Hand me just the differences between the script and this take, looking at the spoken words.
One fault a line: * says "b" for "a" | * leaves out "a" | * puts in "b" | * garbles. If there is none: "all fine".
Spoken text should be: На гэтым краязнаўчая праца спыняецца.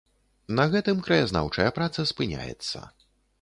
all fine